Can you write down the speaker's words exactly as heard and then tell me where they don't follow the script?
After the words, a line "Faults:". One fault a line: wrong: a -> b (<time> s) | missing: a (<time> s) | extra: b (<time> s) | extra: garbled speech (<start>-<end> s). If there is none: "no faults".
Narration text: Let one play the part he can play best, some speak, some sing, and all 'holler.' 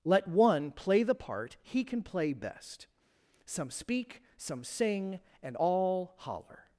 Let one play the part he can play best, some speak, some sing, and all 'holler.'
Faults:
no faults